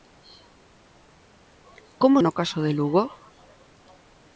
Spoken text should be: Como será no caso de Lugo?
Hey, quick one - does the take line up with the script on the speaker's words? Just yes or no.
no